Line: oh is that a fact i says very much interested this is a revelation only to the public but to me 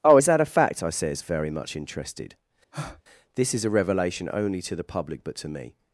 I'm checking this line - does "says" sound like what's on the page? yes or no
yes